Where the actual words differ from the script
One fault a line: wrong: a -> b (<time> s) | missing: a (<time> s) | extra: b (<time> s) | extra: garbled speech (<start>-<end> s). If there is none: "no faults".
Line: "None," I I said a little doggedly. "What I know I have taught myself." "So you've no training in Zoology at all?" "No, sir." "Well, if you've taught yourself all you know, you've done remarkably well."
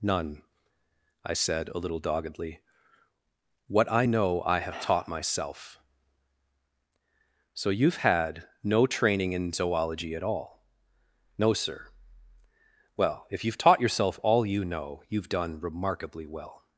missing: I (1.3 s)
extra: had (8.0 s)